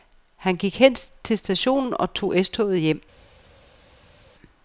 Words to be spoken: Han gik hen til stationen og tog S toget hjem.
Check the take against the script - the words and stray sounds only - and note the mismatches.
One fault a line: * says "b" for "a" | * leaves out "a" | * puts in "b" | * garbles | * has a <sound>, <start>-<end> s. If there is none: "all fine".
all fine